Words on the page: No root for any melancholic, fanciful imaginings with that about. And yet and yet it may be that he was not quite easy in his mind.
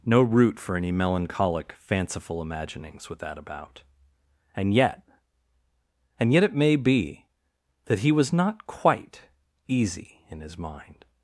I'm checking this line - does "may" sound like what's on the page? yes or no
yes